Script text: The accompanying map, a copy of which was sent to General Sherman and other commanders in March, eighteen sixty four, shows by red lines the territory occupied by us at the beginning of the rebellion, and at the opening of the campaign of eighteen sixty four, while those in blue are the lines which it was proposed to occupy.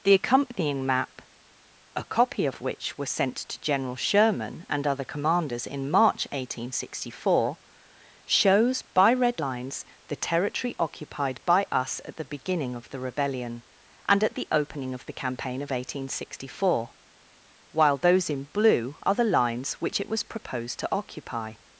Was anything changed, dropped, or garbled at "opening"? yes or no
no